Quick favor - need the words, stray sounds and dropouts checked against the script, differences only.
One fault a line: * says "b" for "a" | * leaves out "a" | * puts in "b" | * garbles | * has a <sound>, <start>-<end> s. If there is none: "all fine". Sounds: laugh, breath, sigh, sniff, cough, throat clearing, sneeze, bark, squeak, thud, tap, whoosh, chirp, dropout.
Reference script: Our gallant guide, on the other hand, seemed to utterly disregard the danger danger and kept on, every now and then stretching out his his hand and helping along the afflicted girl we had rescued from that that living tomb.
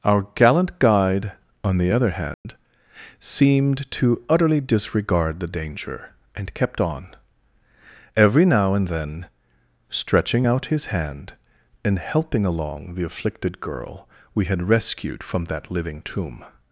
* has a dropout, 2.3-2.5 s
* leaves out "danger"
* leaves out "his"
* leaves out "that"